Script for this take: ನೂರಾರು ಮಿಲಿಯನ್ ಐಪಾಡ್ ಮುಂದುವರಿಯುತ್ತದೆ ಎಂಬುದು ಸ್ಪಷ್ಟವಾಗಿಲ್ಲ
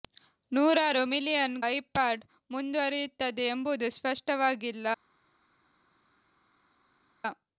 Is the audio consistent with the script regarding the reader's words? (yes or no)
yes